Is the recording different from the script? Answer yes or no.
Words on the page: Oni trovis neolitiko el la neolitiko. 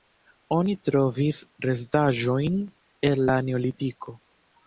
yes